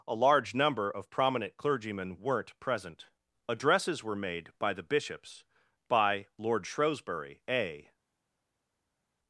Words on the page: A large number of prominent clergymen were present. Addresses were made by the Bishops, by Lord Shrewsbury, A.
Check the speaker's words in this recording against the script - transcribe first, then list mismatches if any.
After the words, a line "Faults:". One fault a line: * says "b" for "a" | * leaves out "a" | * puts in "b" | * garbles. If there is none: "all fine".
A large number of prominent clergymen weren't present. Addresses were made by the Bishops, by Lord Shrewsbury, A.
Faults:
* says "weren't" for "were"